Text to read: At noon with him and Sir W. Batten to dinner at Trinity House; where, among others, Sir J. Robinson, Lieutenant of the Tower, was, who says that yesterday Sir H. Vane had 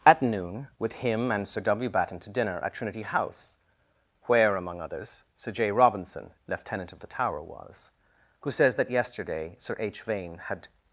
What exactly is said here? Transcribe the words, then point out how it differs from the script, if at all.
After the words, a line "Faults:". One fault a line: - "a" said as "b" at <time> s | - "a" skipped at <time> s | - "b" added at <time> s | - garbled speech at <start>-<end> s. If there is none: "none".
At noon with him and Sir W. Batten to dinner at Trinity House; where, among others, Sir J. Robinson, Lieutenant of the Tower, was, who says that yesterday Sir H. Vane had
Faults:
none